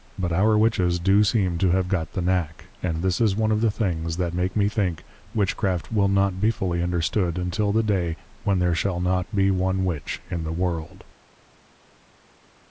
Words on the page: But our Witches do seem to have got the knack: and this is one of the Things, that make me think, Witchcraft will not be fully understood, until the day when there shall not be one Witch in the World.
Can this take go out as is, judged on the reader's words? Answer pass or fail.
pass